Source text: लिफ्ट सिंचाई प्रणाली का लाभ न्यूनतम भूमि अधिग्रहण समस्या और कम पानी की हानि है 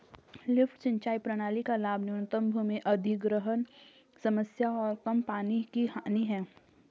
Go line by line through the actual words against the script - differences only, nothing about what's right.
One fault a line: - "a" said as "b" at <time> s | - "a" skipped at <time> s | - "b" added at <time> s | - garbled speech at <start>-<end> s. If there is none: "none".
none